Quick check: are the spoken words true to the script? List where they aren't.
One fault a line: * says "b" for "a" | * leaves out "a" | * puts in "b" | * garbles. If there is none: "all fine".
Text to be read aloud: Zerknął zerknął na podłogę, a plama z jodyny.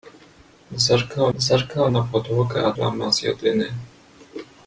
all fine